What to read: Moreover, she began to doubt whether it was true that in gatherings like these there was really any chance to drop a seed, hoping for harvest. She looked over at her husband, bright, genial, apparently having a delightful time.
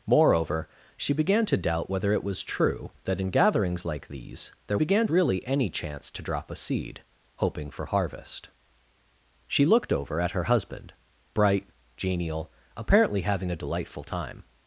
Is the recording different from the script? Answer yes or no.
yes